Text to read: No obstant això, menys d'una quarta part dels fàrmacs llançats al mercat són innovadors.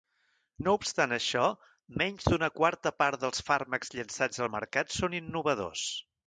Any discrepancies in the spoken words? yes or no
no